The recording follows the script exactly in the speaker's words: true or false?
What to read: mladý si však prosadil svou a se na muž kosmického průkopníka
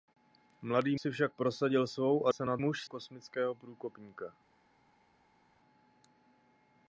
true